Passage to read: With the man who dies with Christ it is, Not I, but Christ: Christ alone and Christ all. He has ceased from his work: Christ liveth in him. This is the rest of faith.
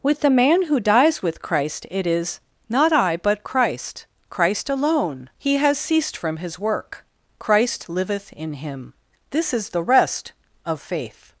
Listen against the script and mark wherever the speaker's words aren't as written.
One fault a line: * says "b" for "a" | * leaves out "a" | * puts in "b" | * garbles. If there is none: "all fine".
* leaves out "and Christ all"